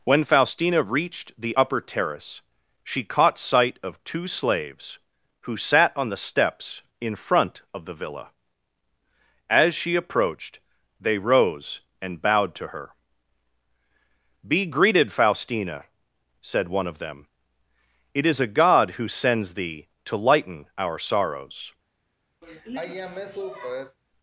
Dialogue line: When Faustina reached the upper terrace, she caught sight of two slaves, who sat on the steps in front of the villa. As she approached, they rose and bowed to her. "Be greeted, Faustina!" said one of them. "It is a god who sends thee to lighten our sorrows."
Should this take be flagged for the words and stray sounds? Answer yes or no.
yes